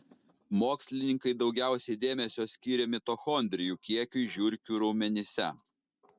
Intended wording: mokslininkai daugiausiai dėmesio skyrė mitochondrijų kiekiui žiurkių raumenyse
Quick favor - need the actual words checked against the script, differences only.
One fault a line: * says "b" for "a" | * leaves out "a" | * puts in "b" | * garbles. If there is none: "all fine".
all fine